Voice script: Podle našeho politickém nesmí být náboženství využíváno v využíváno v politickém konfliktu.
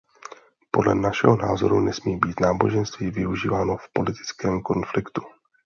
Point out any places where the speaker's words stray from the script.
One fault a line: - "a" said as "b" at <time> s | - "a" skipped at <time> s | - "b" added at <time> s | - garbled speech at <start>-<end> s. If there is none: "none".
- "politickém" said as "názoru" at 1.4 s
- "využíváno v" skipped at 3.9 s